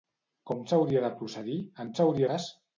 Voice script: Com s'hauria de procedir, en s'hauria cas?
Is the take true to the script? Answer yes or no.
yes